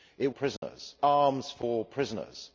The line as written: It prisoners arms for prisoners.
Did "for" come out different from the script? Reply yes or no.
no